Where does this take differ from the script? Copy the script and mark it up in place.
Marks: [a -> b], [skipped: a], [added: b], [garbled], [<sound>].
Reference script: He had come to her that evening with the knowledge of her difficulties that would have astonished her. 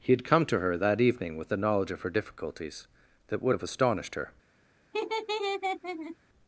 He had come to her that evening with the knowledge of her difficulties that would have astonished her. [laugh]